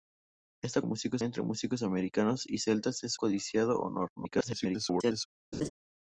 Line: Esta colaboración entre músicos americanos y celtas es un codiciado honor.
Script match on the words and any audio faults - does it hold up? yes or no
no